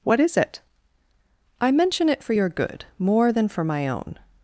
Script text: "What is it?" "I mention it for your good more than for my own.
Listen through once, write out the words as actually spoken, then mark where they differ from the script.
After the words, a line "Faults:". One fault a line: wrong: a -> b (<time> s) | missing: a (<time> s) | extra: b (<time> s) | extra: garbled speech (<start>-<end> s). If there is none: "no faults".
"What is it?" "I mention it for your good more than for my own.
Faults:
no faults